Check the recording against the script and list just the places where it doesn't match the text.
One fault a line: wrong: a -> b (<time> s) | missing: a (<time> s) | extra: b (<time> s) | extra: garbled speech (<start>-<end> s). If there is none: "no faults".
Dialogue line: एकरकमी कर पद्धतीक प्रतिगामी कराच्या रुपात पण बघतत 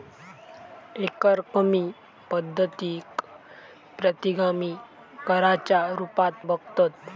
missing: कर (1.8 s)
missing: पण (6.3 s)